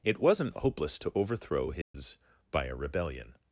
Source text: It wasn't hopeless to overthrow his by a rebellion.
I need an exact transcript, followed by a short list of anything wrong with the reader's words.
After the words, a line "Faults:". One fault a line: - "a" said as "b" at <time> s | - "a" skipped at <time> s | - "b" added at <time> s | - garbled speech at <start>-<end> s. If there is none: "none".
It wasn't hopeless to overthrow his by a rebellion.
Faults:
none